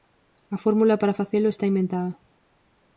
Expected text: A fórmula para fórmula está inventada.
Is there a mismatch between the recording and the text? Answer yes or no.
yes